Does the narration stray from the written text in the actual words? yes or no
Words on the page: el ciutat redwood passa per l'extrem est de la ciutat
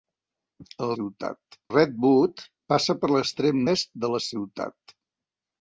no